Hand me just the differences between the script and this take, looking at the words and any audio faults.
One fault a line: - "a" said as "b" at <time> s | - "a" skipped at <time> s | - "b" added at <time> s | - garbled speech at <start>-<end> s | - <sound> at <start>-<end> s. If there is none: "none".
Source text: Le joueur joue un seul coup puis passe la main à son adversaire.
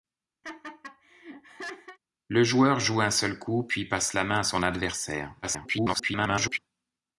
- laugh at 0.4-2.0 s
- garbled speech at 5.4-6.6 s